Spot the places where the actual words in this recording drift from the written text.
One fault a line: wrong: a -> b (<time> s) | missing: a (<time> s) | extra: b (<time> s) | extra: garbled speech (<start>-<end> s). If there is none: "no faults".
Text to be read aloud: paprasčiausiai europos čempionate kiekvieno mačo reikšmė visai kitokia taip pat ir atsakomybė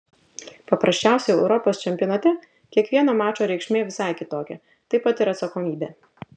no faults